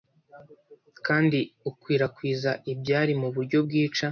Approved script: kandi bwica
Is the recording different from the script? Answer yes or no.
yes